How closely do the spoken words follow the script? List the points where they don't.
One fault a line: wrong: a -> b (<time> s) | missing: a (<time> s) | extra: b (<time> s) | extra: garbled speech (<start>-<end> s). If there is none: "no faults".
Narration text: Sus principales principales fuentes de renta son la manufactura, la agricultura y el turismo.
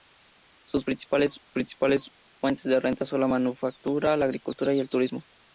no faults